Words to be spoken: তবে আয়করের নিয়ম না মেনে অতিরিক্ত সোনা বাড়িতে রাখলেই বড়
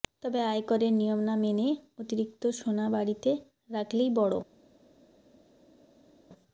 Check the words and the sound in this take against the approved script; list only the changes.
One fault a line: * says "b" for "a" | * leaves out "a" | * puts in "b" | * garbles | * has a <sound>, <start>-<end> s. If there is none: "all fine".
all fine